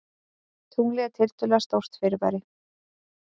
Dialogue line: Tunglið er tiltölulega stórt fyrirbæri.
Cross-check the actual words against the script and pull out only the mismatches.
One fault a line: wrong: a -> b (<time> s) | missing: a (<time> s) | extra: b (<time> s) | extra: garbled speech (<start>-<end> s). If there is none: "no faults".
no faults